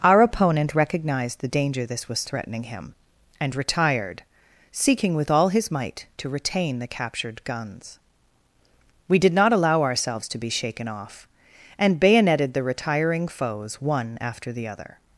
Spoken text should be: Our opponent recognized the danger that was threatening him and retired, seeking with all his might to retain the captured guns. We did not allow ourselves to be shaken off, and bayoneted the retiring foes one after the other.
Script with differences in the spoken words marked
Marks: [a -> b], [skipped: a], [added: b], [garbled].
Our opponent recognized the danger [that -> this] was threatening him and retired, seeking with all his might to retain the captured guns. We did not allow ourselves to be shaken off, and bayoneted the retiring foes one after the other.